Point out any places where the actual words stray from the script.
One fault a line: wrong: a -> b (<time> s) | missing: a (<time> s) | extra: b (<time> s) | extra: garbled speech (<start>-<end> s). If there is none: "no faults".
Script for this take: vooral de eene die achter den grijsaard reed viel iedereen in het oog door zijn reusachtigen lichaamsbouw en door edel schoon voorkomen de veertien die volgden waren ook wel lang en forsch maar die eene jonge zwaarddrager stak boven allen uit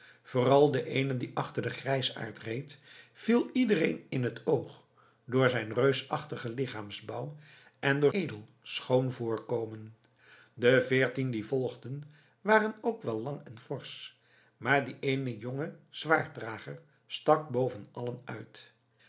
no faults